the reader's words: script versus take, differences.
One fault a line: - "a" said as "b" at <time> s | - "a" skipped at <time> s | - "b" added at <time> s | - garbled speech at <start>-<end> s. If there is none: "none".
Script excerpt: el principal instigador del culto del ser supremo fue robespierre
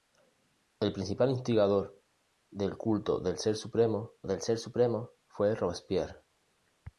- "del ser supremo" added at 4.2 s